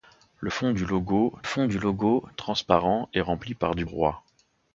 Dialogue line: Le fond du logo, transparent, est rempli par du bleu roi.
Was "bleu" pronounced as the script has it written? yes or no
no